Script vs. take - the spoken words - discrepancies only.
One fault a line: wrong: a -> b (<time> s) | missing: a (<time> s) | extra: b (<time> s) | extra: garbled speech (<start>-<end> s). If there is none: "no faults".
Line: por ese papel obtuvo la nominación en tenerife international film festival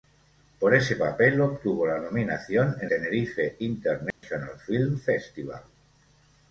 no faults